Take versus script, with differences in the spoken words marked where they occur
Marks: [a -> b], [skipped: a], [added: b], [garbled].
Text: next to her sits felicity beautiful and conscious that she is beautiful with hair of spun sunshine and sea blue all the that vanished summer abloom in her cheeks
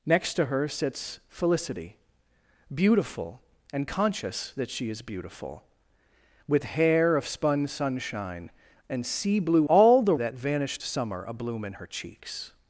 next to her sits felicity beautiful and conscious that she is beautiful with hair of spun sunshine and sea blue all the that vanished summer abloom in her cheeks